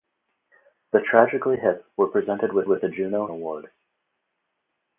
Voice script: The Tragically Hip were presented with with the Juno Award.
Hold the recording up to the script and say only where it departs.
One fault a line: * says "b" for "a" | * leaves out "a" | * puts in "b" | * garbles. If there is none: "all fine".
all fine